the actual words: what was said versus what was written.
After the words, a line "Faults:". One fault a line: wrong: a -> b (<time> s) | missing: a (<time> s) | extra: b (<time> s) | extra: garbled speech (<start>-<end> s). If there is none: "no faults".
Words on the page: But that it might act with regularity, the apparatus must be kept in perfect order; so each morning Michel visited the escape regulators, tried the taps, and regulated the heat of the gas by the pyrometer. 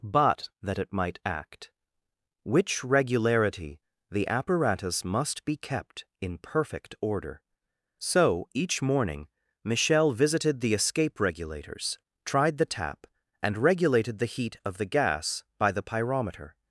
But that it might act which regularity, the apparatus must be kept in perfect order; so each morning Michel visited the escape regulators, tried the tap, and regulated the heat of the gas by the pyrometer.
Faults:
wrong: with -> which (2.4 s)
wrong: taps -> tap (12.7 s)